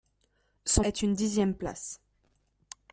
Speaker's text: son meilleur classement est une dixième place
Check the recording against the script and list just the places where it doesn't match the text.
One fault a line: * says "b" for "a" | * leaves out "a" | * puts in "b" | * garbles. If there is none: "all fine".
* leaves out "meilleur classement"